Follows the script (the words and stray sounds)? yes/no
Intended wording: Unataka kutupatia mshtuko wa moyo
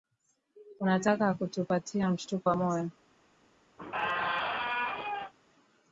no